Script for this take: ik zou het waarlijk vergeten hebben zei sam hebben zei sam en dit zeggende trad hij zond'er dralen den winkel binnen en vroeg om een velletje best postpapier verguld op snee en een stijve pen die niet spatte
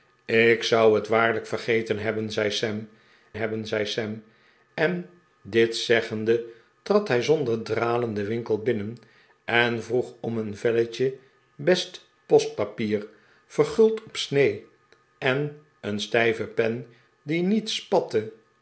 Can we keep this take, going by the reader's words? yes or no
yes